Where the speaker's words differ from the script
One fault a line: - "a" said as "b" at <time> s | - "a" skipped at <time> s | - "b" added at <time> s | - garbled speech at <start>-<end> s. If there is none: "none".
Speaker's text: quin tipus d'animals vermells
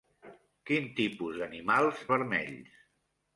none